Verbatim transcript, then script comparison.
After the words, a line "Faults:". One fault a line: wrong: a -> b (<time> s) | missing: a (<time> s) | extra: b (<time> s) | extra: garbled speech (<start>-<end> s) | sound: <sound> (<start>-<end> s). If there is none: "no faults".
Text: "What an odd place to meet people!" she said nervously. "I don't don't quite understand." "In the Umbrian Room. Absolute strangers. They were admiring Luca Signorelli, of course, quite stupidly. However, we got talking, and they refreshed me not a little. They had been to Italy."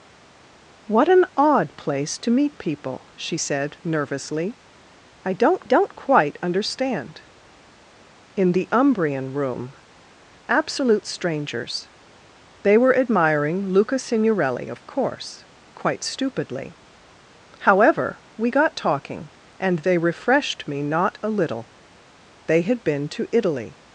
"What an odd place to meet people!" she said nervously. "I don't don't quite understand." "In the Umbrian Room. Absolute strangers. They were admiring Luca Signorelli, of course, quite stupidly. However, we got talking, and they refreshed me not a little. They had been to Italy."
Faults:
no faults